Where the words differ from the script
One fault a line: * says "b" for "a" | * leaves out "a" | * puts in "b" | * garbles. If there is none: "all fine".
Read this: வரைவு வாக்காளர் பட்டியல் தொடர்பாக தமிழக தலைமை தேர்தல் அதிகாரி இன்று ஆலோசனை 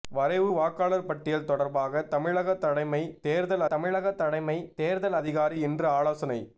* puts in "தமிழக தலைமை தேர்தல்"